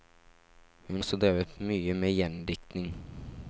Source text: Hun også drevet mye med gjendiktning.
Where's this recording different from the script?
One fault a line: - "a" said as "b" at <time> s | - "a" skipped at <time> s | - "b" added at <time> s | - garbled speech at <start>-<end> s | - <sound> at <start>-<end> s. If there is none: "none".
none